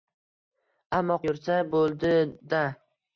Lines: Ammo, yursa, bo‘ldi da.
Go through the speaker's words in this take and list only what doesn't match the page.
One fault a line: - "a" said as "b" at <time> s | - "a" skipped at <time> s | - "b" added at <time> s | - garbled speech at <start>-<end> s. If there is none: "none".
none